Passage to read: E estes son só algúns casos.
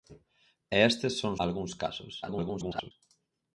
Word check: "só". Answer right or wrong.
wrong